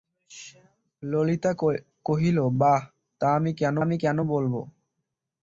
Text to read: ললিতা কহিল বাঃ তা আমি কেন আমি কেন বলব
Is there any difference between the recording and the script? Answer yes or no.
no